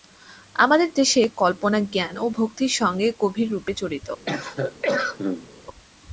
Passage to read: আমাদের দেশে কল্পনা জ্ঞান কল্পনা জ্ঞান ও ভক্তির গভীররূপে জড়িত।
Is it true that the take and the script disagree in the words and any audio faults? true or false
true